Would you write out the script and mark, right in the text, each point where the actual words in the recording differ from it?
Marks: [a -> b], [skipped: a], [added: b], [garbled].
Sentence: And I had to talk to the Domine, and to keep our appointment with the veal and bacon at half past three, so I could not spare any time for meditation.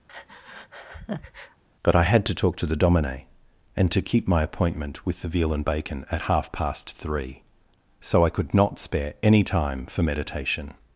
[And -> But] I had to talk to the Domine, and to keep [our -> my] appointment with the veal and bacon at half past three, so I could not spare any time for meditation.